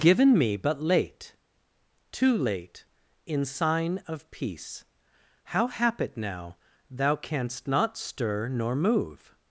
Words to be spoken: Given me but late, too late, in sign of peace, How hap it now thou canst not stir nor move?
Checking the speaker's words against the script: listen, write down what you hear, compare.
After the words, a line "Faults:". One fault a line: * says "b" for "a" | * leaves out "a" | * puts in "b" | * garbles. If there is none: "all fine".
Given me but late, too late, in sign of peace, How hap it now thou canst not stir nor move?
Faults:
all fine